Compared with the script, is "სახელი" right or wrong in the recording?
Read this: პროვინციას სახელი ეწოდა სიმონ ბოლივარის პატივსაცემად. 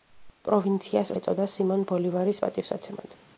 wrong